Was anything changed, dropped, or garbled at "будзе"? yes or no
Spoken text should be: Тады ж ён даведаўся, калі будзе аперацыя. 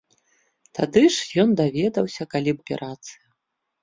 yes